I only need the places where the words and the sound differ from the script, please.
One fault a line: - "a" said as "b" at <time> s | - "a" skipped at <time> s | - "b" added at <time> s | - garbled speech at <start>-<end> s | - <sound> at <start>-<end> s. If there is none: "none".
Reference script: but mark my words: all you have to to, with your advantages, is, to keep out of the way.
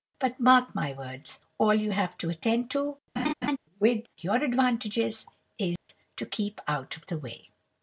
- "attend" added at 2.3 s
- laugh at 3.2-3.6 s
- dropout at 5.8-5.9 s